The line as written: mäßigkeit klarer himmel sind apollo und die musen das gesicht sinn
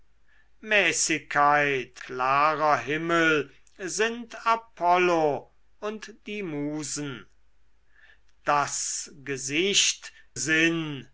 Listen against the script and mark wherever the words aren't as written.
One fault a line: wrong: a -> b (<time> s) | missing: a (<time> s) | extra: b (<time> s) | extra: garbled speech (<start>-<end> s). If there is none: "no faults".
no faults